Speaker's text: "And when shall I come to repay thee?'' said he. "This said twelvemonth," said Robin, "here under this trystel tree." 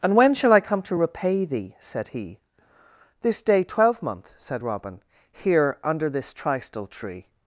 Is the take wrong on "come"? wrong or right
right